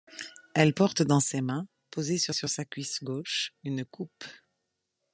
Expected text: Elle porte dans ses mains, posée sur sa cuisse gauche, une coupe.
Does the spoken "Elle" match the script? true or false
true